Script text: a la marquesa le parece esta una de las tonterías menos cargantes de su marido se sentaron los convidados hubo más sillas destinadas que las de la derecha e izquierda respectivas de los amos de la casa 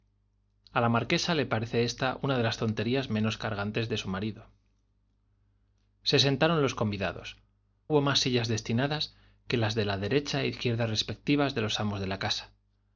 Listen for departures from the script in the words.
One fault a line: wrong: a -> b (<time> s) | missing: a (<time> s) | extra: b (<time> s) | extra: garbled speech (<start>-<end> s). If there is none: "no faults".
no faults